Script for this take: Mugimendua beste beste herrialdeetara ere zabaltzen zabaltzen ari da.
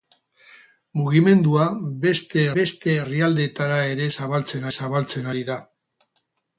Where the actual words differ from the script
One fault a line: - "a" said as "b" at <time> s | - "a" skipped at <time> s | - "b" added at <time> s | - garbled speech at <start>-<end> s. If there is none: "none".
none